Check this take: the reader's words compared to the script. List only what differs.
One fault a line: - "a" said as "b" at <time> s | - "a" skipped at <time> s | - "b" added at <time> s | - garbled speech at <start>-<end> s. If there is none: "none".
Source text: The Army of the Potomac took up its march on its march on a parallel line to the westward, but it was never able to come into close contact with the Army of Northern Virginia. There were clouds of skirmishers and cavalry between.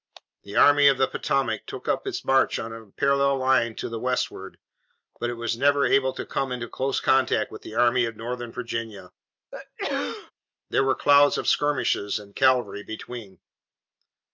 - "its march on" skipped at 2.7 s